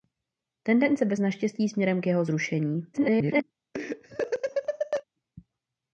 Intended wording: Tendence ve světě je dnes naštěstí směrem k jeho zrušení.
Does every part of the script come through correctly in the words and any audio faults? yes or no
no